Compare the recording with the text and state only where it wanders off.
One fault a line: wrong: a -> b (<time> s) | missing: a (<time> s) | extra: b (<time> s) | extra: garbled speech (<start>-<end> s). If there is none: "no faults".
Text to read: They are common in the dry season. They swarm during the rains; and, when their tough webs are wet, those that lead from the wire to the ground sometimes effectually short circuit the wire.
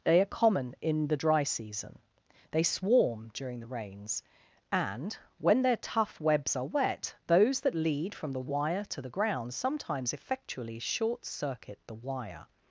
no faults